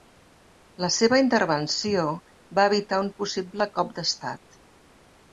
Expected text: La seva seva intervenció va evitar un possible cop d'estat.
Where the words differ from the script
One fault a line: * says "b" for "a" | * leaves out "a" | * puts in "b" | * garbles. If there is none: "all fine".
* leaves out "seva"